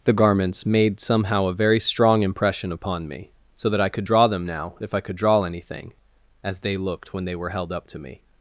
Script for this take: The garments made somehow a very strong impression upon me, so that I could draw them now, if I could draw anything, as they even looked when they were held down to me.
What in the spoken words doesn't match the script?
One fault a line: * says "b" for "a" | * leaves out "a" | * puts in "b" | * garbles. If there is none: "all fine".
* leaves out "even"
* says "up" for "down"